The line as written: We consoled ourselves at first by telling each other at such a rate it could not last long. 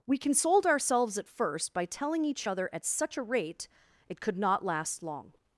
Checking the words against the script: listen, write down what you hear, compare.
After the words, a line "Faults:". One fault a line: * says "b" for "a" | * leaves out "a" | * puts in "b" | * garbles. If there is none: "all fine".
We consoled ourselves at first by telling each other at such a rate it could not last long.
Faults:
all fine